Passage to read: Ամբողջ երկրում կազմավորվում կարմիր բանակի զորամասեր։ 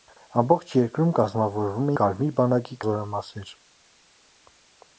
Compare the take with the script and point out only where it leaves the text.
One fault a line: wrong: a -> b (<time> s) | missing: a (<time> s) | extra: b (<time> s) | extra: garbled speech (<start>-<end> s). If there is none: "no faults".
no faults